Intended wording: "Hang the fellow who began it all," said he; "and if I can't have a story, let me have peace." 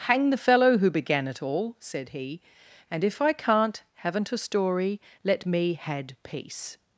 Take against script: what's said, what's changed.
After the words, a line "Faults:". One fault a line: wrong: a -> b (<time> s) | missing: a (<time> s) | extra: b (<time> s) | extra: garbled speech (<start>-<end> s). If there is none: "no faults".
"Hang the fellow who began it all," said he; "and if I can't haven't a story, let me had peace."
Faults:
wrong: have -> haven't (3.9 s)
wrong: have -> had (5.7 s)